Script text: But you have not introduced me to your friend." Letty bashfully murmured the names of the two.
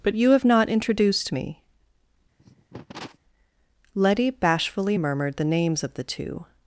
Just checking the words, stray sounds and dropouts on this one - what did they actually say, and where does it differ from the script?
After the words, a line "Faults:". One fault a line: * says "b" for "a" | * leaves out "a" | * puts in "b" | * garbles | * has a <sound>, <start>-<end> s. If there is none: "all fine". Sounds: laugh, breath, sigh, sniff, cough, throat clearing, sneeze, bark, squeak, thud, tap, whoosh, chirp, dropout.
But you have not introduced me." Letty bashfully murmured the names of the two.
Faults:
* leaves out "to your friend"
* has a cough, 2.4-3.2 s